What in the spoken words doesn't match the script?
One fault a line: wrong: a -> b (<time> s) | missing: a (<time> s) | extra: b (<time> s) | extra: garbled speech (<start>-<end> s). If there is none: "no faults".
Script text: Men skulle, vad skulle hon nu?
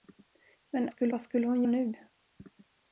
no faults